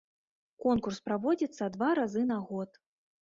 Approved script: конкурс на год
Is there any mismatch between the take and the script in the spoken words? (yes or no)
yes